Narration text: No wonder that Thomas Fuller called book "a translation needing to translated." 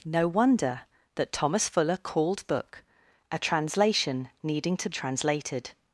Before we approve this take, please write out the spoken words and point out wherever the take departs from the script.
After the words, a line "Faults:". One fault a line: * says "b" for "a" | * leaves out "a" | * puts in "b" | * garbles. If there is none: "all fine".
No wonder that Thomas Fuller called book "a translation needing to translated."
Faults:
all fine